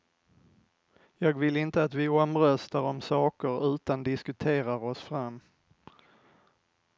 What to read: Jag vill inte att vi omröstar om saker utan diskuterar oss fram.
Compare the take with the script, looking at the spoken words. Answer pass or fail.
pass